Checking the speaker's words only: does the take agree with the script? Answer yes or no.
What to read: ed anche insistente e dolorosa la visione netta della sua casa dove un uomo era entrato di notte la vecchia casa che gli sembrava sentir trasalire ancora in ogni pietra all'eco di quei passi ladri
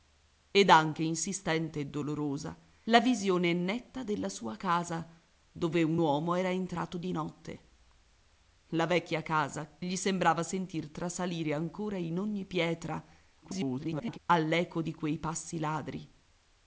no